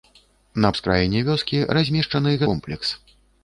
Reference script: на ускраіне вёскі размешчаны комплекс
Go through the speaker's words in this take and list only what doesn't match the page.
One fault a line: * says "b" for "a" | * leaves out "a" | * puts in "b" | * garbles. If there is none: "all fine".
all fine